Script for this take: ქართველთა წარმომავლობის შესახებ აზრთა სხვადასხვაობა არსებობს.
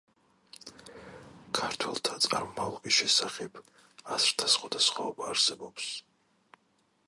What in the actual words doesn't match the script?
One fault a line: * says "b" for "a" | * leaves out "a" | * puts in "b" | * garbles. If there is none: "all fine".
all fine